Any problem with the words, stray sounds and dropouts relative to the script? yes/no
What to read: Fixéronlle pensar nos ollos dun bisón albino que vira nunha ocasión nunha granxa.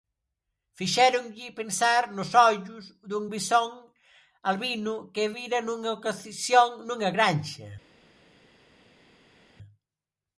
no